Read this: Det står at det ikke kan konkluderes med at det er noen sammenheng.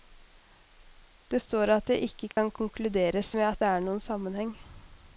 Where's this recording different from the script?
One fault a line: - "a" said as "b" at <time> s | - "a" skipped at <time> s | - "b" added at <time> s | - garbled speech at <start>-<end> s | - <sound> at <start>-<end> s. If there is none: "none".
- dropout at 2.3-2.4 s